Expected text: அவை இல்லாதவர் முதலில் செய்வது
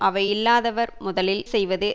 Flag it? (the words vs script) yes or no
no